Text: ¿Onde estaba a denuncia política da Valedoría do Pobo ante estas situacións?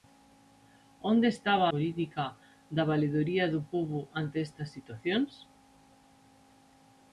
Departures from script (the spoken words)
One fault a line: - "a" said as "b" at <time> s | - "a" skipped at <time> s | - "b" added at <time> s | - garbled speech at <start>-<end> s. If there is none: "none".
- "a denuncia" skipped at 1.7 s